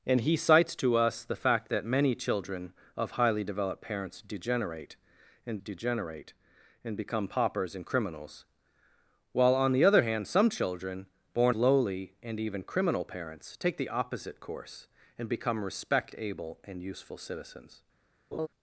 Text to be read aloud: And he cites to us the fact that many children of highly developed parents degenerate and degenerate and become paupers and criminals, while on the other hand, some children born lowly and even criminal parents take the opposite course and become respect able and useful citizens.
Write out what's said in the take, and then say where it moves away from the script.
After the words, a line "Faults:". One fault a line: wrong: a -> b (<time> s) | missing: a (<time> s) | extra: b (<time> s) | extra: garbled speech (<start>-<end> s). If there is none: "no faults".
And he cites to us the fact that many children of highly developed parents degenerate and degenerate and become paupers and criminals, while on the other hand, some children born lowly and even criminal parents take the opposite course and become respect able and useful citizens.
Faults:
no faults